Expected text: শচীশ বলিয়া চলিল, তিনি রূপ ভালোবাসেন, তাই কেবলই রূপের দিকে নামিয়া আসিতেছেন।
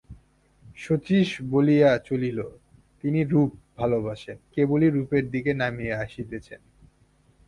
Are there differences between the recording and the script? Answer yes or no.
yes